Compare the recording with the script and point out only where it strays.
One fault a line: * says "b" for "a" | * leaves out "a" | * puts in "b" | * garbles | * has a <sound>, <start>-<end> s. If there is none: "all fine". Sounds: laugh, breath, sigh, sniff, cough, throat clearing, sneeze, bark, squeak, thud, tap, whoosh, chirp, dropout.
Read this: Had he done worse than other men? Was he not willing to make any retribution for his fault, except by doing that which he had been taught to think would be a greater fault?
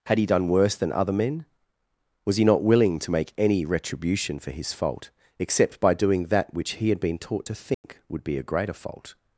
* has a dropout, 7.7-7.8 s